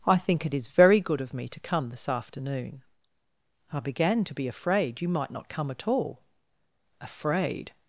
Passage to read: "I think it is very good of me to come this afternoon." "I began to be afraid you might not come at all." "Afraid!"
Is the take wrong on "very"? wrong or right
right